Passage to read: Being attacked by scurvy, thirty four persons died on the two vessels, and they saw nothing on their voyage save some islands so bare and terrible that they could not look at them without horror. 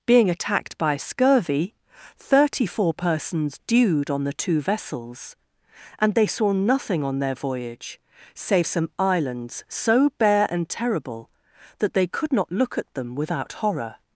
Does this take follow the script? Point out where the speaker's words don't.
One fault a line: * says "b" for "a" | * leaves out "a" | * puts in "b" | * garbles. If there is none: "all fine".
* says "dewed" for "died"